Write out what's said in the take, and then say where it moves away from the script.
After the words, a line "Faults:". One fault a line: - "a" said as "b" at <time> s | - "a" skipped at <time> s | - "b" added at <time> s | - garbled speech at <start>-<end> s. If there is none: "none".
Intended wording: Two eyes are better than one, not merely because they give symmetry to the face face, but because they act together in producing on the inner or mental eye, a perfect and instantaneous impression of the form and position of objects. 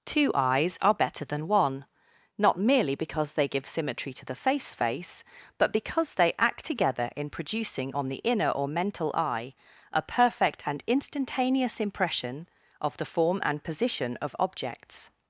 Two eyes are better than one, not merely because they give symmetry to the face face, but because they act together in producing on the inner or mental eye, a perfect and instantaneous impression of the form and position of objects.
Faults:
none